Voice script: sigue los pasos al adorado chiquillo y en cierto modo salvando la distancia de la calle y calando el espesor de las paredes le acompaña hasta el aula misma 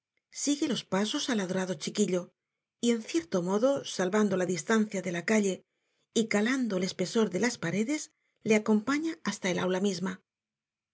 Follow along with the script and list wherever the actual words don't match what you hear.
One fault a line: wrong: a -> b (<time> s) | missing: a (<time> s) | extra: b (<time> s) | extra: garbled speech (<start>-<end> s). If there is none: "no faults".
no faults